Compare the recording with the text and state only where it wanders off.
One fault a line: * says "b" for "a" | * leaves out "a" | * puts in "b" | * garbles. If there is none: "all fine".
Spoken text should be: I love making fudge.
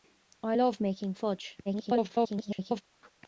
* garbles